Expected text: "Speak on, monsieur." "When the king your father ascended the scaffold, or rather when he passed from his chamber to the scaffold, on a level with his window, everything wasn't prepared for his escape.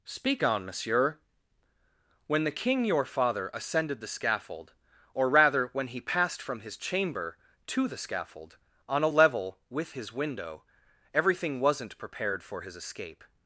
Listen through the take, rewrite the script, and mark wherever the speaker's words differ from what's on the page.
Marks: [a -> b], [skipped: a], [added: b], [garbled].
"Speak on, monsieur." "When the king your father ascended the scaffold, or rather when he passed from his chamber to the scaffold, on a level with his window, everything wasn't prepared for his escape.